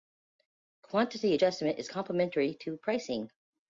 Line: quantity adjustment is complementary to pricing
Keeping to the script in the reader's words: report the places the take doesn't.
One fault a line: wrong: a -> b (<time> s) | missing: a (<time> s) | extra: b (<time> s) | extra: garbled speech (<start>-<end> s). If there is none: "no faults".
no faults